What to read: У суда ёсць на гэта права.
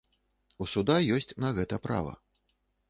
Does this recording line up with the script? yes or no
yes